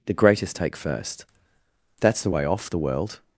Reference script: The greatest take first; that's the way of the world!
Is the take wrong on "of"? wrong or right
wrong